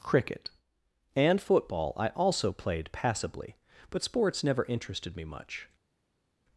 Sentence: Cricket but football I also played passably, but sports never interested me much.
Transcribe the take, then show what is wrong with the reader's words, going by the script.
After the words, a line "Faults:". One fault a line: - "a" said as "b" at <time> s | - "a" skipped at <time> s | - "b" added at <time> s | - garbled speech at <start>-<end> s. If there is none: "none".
Cricket and football I also played passably, but sports never interested me much.
Faults:
- "but" said as "and" at 1.1 s